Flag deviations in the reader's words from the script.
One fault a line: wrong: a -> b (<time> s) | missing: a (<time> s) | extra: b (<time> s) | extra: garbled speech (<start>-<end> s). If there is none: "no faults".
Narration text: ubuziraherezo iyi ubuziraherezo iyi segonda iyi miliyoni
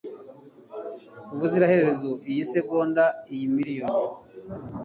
missing: ubuziraherezo iyi (2.4 s)